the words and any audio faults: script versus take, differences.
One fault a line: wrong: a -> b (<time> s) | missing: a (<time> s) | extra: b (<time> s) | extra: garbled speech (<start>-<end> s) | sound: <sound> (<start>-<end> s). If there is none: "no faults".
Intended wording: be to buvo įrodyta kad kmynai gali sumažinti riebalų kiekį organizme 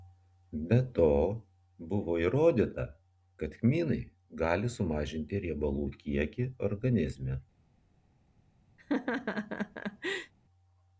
sound: laugh (8.8-10.3 s)